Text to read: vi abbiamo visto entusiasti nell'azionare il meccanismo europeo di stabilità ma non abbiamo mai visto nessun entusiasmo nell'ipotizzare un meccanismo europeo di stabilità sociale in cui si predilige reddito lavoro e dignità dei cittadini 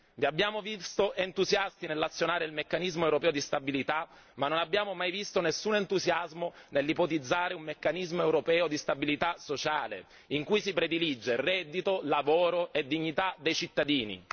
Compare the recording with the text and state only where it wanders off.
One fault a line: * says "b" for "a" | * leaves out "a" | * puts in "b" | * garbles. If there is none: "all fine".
all fine